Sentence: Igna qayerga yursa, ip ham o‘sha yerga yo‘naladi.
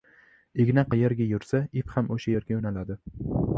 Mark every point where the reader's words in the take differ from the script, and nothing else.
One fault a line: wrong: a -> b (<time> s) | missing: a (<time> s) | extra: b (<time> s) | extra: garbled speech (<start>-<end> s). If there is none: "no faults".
no faults